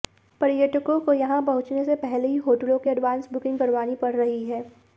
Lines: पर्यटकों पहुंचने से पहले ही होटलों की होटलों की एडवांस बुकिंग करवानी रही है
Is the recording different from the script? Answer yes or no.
yes